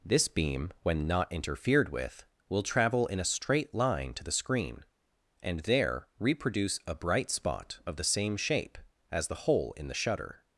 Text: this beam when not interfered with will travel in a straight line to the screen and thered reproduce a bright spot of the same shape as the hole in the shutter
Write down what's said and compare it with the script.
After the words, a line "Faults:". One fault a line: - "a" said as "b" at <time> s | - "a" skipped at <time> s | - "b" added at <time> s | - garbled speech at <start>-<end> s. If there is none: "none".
this beam when not interfered with will travel in a straight line to the screen and there reproduce a bright spot of the same shape as the hole in the shutter
Faults:
- "thered" said as "there" at 5.6 s